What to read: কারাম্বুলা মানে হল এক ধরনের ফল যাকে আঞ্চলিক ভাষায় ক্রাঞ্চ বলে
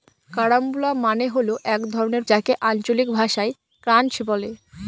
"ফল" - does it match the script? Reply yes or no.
no